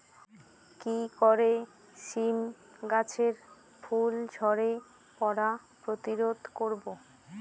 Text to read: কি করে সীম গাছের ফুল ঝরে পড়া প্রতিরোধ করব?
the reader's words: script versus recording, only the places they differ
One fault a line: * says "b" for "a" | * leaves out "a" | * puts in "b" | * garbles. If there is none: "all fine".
all fine